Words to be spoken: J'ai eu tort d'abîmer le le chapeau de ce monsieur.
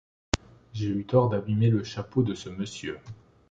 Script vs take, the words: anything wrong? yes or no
yes